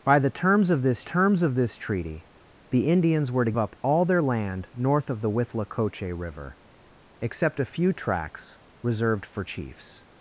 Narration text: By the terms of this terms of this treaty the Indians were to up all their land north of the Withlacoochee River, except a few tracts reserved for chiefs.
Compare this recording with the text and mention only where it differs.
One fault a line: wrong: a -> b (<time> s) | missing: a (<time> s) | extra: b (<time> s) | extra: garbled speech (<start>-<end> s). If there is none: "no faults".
no faults